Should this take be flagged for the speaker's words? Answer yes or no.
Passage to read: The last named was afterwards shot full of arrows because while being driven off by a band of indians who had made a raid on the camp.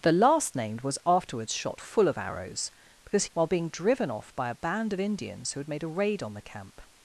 no